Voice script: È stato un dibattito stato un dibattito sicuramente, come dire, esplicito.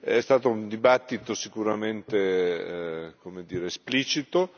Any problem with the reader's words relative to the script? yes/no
yes